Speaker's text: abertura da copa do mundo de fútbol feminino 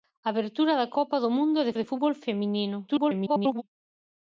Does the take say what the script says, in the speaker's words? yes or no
no